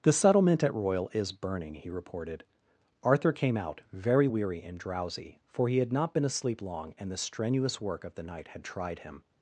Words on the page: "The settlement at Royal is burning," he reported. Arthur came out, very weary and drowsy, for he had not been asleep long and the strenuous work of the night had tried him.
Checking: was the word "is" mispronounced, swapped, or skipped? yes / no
no